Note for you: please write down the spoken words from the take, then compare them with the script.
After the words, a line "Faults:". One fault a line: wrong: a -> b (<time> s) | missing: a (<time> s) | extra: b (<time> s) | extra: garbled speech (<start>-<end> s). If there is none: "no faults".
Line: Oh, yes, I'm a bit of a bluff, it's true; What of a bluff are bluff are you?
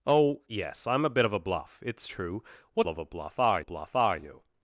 Oh, yes, I'm a bit of a bluff, it's true; What of a bluff are bluff are you?
Faults:
no faults